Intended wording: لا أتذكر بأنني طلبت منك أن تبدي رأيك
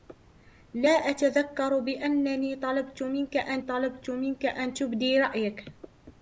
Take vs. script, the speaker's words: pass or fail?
fail